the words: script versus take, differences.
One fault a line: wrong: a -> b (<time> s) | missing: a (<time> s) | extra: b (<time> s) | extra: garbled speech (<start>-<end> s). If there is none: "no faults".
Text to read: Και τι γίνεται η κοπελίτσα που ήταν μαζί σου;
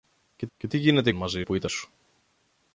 extra: και (0.6 s)
wrong: κοπελίτσα -> μαζί (1.1 s)
missing: μαζί (1.7 s)